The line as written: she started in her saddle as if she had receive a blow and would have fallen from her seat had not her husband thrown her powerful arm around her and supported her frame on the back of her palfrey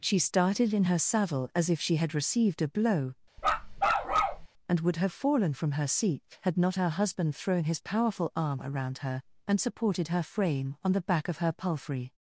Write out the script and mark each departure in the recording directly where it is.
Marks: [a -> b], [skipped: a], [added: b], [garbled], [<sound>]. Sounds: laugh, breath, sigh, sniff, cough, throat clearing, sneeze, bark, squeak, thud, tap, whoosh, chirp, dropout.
she started in her saddle as if she had [receive -> received] a blow [bark] and would have fallen from her seat had not her husband thrown [her -> his] powerful arm around her and supported her frame on the back of her palfrey